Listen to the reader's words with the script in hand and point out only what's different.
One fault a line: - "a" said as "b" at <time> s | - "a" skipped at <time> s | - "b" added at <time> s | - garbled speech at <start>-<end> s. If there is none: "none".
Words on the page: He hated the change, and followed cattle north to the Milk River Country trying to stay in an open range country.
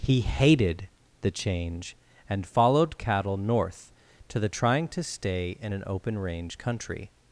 - "Milk River Country" skipped at 4.5 s